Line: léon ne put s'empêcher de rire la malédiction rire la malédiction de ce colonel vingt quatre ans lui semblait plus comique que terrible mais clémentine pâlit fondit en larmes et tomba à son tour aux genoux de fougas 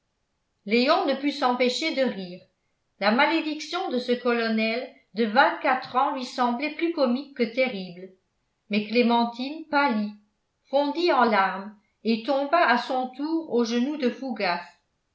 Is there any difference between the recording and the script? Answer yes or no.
yes